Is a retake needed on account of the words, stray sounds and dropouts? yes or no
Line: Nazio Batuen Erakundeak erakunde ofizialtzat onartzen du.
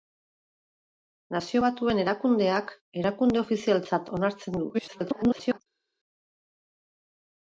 yes